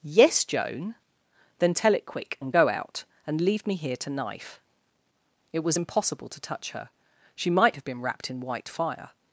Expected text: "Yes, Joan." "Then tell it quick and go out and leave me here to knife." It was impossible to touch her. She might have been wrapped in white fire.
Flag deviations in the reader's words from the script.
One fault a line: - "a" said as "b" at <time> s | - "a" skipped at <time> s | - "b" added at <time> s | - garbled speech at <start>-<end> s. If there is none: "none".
none